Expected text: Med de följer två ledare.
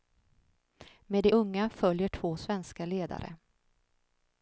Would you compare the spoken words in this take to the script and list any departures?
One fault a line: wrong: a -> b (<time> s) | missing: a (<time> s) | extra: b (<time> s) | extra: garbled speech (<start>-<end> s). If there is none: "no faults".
extra: unga (1.3 s)
extra: svenska (2.3 s)